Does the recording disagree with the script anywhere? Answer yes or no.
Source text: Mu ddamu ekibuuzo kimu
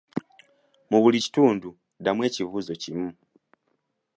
yes